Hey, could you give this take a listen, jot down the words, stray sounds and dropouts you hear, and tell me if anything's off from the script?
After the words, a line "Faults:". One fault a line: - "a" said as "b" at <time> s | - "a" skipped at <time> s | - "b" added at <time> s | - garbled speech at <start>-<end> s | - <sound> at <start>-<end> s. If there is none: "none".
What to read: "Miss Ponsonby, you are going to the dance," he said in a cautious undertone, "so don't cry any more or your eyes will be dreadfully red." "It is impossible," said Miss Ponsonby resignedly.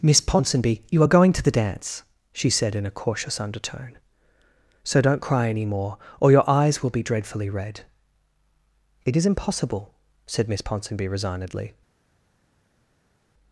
"Miss Ponsonby, you are going to the dance," she said in a cautious undertone, "so don't cry any more or your eyes will be dreadfully red." "It is impossible," said Miss Ponsonby resignedly.
Faults:
- "he" said as "she" at 2.3 s